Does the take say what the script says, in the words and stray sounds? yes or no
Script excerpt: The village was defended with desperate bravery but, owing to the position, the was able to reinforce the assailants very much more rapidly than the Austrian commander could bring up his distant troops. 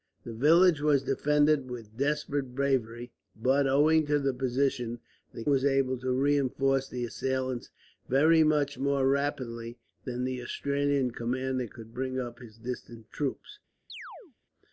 no